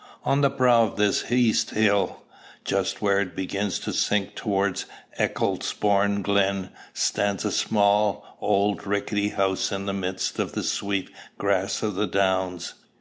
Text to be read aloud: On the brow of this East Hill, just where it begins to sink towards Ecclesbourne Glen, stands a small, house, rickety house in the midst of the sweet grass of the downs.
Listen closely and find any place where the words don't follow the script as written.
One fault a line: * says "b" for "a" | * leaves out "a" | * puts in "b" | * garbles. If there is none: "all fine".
* says "old" for "house"